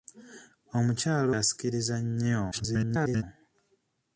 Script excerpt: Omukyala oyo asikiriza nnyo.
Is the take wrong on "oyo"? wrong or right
wrong